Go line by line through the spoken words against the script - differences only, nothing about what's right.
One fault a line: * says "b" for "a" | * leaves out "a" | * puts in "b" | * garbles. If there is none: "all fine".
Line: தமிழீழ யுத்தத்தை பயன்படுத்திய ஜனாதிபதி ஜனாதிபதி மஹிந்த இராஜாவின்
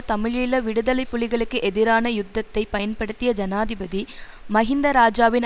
* puts in "விடுதலை புலிகளுக்கு எதிரான"
* leaves out "ஜனாதிபதி"